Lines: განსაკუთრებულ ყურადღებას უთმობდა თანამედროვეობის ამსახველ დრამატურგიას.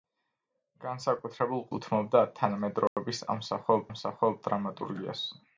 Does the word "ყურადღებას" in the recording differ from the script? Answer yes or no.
yes